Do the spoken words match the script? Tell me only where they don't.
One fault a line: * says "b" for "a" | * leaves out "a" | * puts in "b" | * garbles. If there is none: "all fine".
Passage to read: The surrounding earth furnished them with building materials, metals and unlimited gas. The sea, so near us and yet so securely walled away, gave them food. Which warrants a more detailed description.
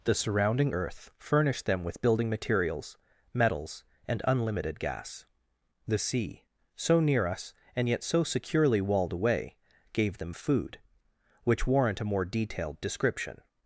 * says "warrant" for "warrants"